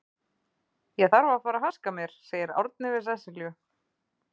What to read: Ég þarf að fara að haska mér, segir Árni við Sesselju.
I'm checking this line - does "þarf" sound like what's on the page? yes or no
yes